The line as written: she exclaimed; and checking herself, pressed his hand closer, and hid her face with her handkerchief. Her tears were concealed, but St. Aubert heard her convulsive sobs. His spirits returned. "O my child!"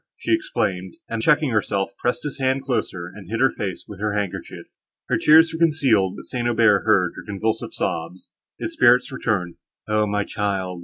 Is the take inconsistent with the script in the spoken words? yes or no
no